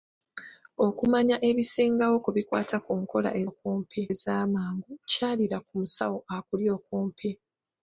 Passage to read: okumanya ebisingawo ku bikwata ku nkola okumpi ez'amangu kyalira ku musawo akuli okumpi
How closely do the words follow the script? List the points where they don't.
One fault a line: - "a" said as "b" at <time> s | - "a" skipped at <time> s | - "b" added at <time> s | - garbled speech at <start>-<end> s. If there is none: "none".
none